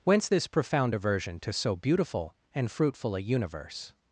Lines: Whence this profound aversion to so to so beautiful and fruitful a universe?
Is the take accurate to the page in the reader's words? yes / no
no